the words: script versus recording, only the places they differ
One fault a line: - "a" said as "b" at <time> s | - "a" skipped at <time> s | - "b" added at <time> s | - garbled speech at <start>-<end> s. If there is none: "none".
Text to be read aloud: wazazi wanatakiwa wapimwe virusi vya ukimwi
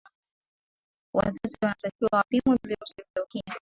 none